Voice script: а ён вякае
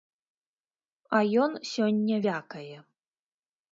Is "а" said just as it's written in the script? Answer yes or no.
yes